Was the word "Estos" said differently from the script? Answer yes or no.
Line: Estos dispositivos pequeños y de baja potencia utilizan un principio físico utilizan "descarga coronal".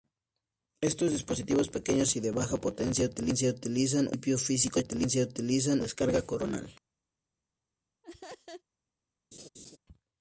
no